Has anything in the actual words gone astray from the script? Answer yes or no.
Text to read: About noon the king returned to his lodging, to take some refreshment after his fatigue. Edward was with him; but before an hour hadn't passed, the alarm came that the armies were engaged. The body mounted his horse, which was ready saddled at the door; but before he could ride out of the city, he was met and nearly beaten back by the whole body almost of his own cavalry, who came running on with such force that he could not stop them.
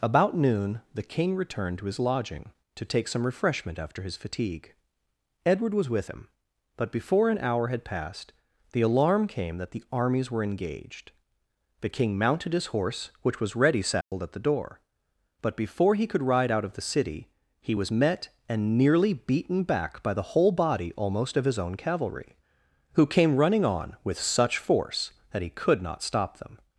yes